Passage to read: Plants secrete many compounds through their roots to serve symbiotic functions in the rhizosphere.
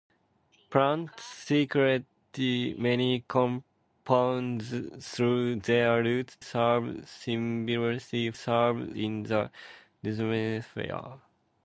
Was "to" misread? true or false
true